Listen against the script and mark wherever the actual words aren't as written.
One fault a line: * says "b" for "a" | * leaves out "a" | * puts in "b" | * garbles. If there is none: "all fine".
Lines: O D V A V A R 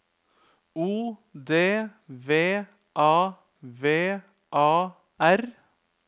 all fine